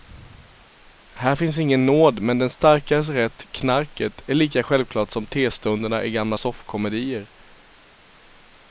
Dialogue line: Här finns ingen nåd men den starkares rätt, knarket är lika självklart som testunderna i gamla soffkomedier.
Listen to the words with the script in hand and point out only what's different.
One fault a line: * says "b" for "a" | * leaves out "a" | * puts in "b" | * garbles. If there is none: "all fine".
all fine